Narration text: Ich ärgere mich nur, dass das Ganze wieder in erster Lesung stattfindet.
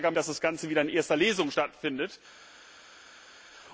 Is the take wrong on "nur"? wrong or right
wrong